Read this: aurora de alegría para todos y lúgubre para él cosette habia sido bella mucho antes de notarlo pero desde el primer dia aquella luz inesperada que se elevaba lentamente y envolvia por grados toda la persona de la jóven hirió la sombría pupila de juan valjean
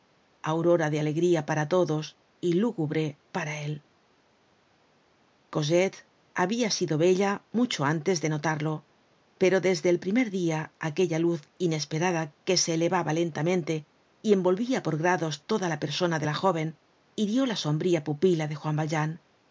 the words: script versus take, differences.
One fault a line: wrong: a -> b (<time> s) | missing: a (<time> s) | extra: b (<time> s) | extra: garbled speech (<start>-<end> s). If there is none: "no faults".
no faults